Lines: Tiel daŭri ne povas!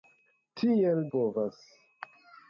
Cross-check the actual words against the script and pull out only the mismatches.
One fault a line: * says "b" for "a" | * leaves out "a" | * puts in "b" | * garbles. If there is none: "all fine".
* leaves out "daŭri ne"